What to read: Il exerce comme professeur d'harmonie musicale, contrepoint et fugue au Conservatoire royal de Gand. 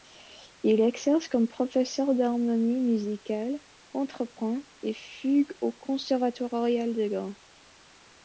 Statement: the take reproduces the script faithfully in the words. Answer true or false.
true